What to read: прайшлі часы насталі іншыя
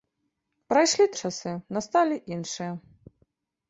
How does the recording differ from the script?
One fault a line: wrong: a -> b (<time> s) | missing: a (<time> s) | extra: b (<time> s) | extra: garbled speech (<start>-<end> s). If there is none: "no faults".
no faults